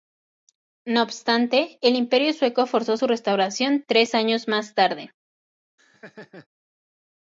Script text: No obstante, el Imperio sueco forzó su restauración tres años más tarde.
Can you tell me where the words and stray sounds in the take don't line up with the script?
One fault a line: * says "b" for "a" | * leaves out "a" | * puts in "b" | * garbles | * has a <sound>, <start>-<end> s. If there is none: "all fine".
* has a laugh, 5.8-6.5 s